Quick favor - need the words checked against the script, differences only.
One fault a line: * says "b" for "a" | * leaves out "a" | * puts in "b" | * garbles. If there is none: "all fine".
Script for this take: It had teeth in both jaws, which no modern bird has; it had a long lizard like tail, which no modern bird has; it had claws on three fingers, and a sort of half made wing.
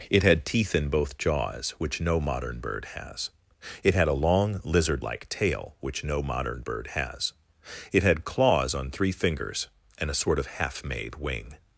all fine